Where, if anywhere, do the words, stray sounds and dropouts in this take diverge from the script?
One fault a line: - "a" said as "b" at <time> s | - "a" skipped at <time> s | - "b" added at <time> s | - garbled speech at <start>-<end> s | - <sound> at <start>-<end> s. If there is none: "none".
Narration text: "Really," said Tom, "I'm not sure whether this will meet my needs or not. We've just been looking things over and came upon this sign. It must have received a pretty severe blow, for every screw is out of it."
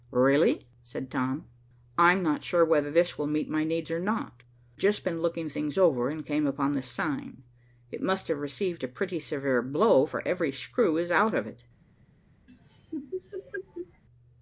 - "We've" skipped at 4.4 s
- laugh at 12.5-14.0 s